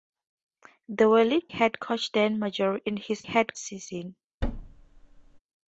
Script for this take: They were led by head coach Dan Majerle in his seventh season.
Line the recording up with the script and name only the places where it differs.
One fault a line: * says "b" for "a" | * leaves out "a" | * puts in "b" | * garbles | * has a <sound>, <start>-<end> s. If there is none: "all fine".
* leaves out "by"
* says "head" for "seventh"
* has a thud, 4.4-5.4 s